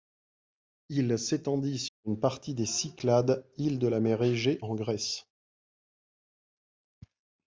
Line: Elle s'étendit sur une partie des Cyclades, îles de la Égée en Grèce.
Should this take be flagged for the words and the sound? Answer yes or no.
yes